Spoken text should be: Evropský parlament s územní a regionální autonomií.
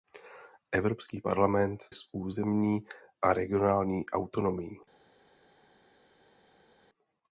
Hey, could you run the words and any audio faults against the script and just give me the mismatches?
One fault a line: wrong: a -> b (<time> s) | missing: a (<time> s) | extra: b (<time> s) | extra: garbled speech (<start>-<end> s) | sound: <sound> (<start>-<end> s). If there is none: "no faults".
no faults